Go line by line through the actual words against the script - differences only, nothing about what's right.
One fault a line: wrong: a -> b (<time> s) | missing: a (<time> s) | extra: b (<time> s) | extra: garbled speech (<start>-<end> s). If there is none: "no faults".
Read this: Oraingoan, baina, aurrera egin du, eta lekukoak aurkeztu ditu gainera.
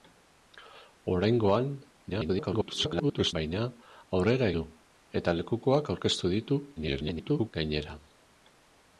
extra: garbled speech (2.1-3.3 s)
missing: egin (4.5 s)
extra: garbled speech (6.8-7.5 s)